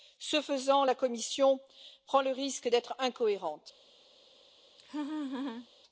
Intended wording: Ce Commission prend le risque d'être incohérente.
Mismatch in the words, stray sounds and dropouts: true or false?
true